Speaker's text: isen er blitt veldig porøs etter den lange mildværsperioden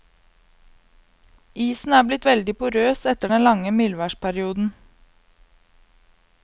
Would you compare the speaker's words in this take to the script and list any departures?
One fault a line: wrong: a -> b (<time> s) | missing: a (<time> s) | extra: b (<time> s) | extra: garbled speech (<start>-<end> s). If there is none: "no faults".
no faults